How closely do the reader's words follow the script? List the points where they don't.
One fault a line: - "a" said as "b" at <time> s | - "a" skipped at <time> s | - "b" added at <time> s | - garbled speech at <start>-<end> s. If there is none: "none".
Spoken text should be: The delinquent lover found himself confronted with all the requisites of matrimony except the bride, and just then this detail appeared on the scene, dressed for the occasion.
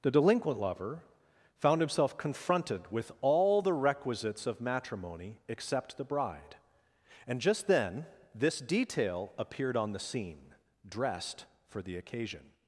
none